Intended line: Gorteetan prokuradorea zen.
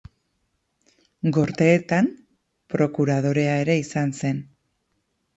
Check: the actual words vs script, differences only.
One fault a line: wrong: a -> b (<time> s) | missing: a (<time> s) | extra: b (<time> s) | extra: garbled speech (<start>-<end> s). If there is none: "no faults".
extra: ere izan (3.6 s)